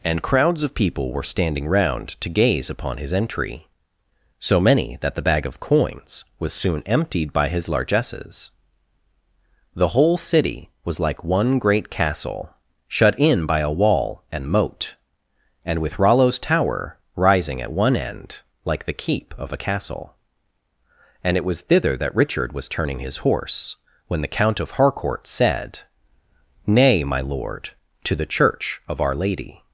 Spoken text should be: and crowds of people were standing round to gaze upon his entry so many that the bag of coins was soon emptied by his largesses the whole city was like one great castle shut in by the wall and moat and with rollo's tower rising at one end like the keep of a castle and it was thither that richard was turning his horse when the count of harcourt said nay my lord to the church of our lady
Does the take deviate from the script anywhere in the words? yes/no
yes